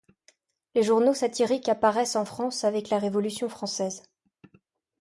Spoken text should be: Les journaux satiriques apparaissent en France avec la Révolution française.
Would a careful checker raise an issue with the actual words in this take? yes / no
no